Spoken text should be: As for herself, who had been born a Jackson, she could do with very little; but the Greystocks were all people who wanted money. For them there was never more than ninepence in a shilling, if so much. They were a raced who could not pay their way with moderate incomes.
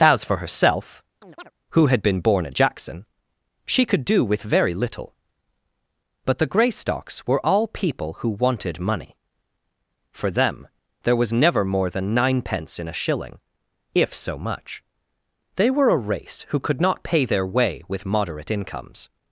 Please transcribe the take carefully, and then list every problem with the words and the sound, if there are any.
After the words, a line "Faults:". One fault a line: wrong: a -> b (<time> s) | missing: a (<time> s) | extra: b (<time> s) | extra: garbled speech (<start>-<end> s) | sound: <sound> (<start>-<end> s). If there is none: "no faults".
As for herself, who had been born a Jackson, she could do with very little; but the Greystocks were all people who wanted money. For them there was never more than ninepence in a shilling, if so much. They were a race who could not pay their way with moderate incomes.
Faults:
sound: chirp (1.2-1.5 s)
wrong: raced -> race (16.1 s)